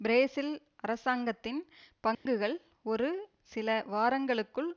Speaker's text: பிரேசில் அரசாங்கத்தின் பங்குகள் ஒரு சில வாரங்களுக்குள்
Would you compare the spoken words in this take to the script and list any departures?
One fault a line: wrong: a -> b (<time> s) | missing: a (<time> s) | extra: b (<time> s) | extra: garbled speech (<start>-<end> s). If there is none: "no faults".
no faults